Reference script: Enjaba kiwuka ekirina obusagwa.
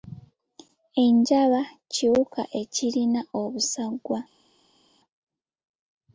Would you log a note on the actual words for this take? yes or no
no